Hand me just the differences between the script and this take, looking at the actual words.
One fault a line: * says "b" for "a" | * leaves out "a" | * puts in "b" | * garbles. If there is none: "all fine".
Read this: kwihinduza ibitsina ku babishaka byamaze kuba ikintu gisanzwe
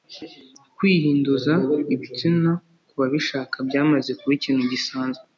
all fine